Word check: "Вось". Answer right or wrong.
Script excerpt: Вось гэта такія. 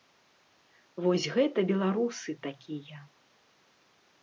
right